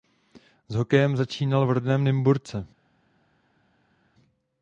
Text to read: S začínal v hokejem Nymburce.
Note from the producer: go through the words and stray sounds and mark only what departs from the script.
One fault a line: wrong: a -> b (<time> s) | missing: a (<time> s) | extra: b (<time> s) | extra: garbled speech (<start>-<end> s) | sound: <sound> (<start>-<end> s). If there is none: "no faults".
extra: hokejem (0.8 s)
wrong: hokejem -> rodném (1.7 s)